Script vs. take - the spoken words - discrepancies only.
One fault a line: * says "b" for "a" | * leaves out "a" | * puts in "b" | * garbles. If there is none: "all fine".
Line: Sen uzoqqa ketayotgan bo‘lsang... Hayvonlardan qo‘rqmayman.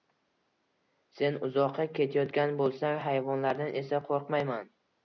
* puts in "esa"